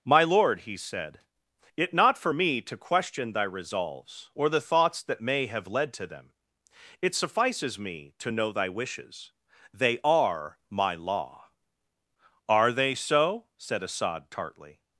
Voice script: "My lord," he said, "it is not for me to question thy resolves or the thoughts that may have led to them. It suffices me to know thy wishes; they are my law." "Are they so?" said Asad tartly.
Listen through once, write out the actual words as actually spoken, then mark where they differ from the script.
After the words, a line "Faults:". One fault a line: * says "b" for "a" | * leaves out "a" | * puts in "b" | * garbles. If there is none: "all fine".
"My lord," he said, "it not for me to question thy resolves or the thoughts that may have led to them. It suffices me to know thy wishes; they are my law." "Are they so?" said Asad tartly.
Faults:
* leaves out "is"